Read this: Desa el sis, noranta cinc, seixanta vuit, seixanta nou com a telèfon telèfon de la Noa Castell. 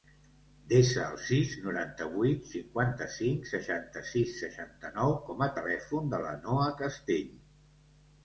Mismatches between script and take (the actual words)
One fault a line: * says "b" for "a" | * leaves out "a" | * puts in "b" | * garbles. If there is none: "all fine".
* puts in "vuit cinquanta"
* says "sis" for "vuit"
* leaves out "telèfon"